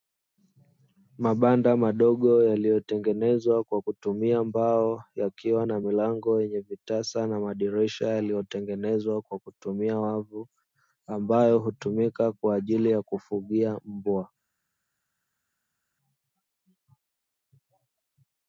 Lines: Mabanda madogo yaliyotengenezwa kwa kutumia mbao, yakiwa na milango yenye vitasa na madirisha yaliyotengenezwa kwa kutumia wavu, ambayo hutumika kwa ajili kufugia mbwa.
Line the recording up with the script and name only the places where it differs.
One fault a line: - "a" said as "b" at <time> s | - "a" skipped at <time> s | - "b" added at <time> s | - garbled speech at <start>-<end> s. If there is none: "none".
- "ya" added at 12.9 s